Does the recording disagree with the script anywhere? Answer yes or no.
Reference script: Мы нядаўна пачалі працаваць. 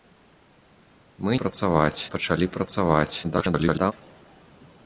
yes